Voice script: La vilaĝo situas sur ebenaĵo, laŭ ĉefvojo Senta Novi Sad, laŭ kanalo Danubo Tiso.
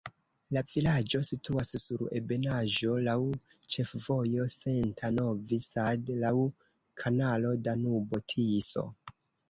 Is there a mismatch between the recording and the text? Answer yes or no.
no